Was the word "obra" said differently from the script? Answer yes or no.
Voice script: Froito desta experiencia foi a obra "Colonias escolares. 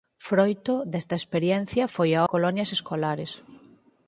yes